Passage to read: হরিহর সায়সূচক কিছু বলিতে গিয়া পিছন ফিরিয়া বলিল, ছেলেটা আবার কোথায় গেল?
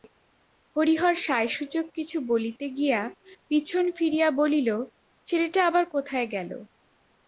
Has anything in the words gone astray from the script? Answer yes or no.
no